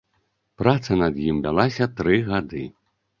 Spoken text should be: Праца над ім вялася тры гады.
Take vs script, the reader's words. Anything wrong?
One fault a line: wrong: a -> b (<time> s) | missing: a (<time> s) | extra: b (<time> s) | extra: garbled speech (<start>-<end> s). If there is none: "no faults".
no faults